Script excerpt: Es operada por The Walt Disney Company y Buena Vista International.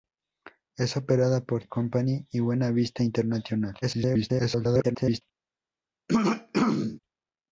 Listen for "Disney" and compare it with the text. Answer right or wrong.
wrong